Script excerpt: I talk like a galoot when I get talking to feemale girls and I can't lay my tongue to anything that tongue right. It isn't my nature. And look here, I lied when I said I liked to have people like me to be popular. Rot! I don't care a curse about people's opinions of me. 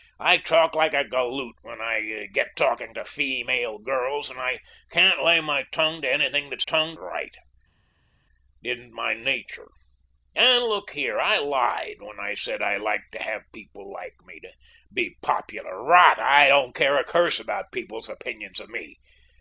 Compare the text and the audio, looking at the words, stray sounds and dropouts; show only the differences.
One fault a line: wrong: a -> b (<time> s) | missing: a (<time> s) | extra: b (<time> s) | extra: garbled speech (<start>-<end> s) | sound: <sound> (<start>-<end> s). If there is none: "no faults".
no faults